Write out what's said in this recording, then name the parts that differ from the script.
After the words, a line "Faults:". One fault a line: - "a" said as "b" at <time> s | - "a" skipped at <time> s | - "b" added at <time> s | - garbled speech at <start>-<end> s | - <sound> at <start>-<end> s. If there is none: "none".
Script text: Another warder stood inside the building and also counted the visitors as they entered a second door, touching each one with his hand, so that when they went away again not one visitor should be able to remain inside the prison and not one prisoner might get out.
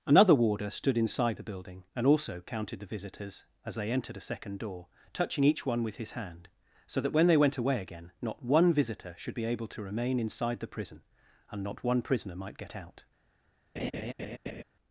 Another warder stood inside the building and also counted the visitors as they entered a second door, touching each one with his hand, so that when they went away again not one visitor should be able to remain inside the prison and not one prisoner might get out.
Faults:
- laugh at 13.8-14.6 s